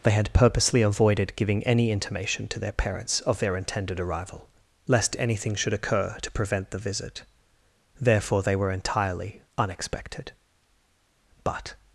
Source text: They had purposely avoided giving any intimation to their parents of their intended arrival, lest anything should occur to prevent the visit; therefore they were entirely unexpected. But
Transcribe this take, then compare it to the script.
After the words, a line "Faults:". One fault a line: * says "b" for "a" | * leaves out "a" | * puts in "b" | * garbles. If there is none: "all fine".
They had purposely avoided giving any intimation to their parents of their intended arrival, lest anything should occur to prevent the visit; therefore they were entirely unexpected. But
Faults:
all fine